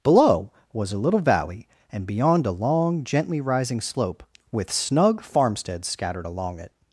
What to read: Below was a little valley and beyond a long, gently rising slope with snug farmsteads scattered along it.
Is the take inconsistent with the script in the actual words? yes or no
no